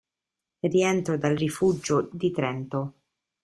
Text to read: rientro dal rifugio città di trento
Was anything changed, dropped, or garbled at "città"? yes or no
yes